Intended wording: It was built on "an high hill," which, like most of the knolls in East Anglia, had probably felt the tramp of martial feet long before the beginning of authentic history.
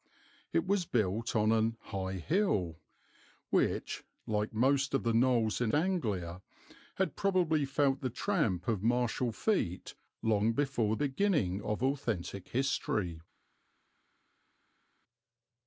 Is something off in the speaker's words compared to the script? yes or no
yes